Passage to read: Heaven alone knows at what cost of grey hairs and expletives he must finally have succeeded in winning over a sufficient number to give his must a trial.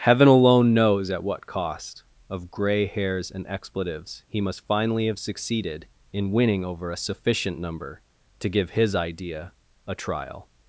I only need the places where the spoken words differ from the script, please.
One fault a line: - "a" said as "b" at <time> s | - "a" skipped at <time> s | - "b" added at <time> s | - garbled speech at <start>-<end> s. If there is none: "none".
- "must" said as "idea" at 9.0 s